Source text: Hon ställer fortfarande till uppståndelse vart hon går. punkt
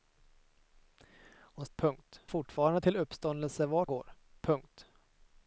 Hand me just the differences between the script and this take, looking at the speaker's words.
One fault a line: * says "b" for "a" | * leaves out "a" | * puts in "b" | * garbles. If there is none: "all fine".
* says "punkt" for "ställer"
* leaves out "hon"